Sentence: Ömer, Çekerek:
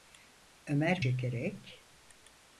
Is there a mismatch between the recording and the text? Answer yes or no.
no